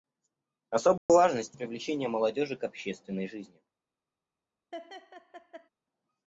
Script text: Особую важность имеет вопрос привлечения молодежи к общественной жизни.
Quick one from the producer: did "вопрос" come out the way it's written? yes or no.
no